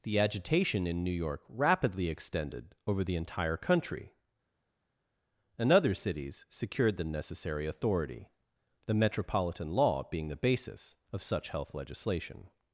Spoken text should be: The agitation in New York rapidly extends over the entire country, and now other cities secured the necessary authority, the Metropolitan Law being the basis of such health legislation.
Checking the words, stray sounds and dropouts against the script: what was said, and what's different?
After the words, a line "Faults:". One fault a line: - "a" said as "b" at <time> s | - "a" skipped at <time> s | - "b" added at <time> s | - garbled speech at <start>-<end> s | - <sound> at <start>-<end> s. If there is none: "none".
The agitation in New York rapidly extended over the entire country, and other cities secured the necessary authority, the Metropolitan Law being the basis of such health legislation.
Faults:
- "extends" said as "extended" at 2.1 s
- "now" skipped at 5.7 s